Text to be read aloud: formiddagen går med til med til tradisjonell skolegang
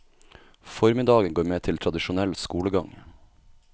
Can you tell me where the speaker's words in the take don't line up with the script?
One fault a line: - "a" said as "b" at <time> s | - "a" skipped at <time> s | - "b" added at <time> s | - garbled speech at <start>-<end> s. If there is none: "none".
- "med til" skipped at 1.8 s